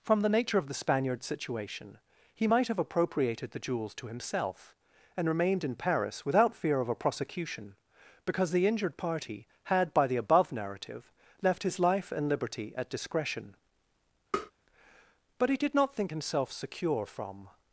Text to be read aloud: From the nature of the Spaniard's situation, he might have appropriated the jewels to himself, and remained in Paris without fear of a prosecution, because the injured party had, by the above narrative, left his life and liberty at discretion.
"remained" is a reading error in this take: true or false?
false